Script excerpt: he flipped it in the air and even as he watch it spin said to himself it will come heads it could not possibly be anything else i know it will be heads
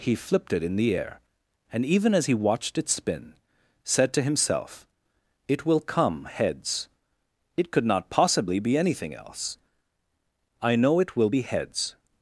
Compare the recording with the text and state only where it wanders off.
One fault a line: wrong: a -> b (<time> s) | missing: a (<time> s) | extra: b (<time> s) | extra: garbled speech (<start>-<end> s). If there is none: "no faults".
wrong: watch -> watched (2.3 s)